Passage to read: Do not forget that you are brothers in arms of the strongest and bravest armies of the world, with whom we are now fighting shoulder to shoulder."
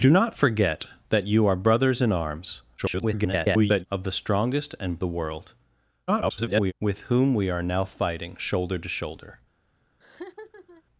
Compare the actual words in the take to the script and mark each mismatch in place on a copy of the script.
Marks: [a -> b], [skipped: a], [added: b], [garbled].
Do not forget that you are brothers in arms [garbled] of the strongest and [skipped: bravest armies of] the world, [garbled] with whom we are now fighting shoulder to shoulder."